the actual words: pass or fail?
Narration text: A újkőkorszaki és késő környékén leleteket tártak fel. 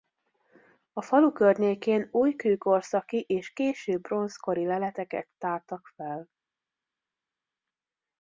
fail